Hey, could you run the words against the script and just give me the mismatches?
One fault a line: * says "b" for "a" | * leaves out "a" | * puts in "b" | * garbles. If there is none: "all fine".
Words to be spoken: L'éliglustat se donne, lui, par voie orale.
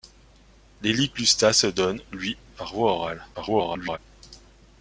* garbles